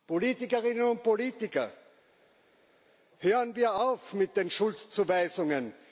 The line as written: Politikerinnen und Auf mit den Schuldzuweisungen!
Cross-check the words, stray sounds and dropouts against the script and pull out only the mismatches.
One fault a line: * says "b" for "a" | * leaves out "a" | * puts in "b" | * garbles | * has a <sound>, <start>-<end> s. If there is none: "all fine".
* puts in "Politiker hören wir"